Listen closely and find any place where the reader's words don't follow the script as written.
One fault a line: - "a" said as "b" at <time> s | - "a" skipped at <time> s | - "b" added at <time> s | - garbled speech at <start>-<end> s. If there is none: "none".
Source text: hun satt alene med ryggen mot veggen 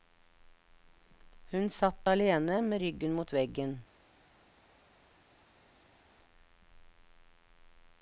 none